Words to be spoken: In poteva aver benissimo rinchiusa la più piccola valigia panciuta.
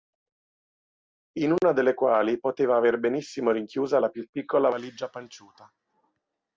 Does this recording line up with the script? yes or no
no